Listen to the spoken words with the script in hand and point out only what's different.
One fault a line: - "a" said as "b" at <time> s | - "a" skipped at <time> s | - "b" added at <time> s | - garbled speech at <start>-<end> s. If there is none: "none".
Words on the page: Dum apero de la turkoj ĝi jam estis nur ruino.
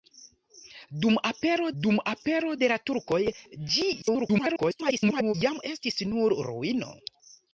- "dum apero" added at 1.8 s
- garbled speech at 4.0-5.3 s